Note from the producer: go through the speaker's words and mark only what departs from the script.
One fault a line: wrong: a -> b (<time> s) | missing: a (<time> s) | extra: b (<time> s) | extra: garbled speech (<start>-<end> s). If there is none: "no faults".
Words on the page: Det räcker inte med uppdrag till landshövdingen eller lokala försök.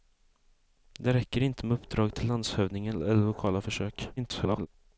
extra: garbled speech (4.2-4.7 s)